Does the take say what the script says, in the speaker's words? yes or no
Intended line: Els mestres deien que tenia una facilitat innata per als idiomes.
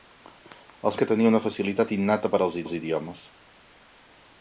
no